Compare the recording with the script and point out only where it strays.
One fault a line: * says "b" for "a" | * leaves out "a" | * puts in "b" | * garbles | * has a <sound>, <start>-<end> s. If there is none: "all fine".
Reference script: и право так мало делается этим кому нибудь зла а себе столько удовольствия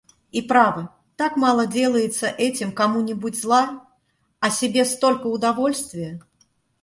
all fine